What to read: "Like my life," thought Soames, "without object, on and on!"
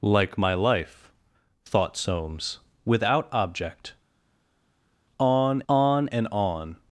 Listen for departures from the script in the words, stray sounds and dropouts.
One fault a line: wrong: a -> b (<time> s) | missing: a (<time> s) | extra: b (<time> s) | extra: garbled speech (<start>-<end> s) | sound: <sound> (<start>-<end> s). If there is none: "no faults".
extra: on (5.7 s)